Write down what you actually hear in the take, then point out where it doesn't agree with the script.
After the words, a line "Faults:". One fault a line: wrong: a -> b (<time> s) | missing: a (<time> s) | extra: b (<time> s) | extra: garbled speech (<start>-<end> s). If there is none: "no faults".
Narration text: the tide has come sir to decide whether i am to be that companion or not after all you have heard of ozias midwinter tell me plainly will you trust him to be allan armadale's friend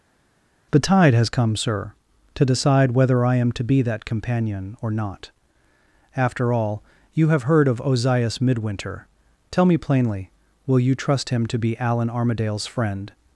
the tide has come sir to decide whether i am to be that companion or not after all you have heard of ozias midwinter tell me plainly will you trust him to be allan armadale's friend
Faults:
no faults